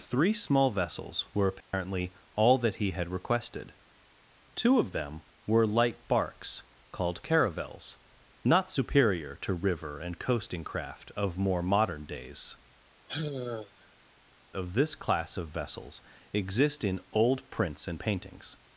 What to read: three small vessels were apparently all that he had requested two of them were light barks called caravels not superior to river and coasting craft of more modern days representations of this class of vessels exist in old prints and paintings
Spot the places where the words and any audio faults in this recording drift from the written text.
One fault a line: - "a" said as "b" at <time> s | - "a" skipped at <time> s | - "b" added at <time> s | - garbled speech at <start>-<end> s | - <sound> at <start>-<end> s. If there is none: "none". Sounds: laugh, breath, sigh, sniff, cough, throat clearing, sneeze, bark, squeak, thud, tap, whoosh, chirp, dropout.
- dropout at 1.6-1.7 s
- "representations" skipped at 12.6 s
- sigh at 13.1-14.0 s